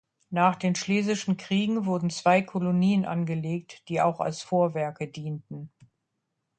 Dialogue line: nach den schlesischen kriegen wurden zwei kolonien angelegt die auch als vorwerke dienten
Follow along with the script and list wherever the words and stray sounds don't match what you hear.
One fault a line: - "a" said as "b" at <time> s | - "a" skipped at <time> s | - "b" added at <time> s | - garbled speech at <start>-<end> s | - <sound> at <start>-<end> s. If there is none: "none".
none